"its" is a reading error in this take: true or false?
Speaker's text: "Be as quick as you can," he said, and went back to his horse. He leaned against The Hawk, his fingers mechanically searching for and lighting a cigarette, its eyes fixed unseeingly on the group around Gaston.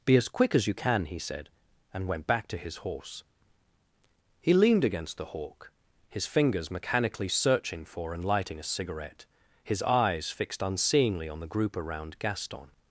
true